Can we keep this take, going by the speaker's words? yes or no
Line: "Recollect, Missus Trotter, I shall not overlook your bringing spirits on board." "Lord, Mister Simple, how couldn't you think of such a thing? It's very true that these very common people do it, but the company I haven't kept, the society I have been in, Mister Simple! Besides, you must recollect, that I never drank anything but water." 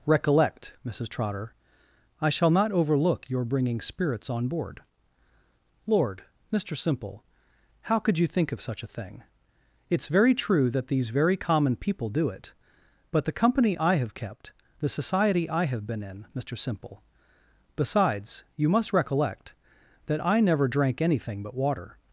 no